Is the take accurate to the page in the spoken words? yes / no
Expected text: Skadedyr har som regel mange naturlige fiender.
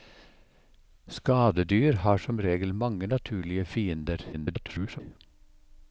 no